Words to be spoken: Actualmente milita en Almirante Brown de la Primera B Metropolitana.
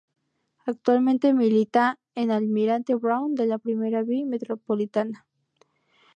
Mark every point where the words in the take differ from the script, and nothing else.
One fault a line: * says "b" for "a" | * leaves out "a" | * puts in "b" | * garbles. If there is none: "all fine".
all fine